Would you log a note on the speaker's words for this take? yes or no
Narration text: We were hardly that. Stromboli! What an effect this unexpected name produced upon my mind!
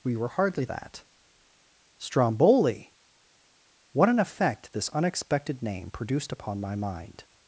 no